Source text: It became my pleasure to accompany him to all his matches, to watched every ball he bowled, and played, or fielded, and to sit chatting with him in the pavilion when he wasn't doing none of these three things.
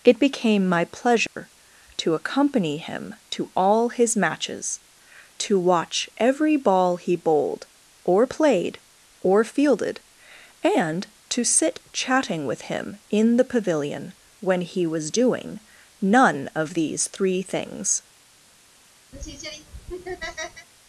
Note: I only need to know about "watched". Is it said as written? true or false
false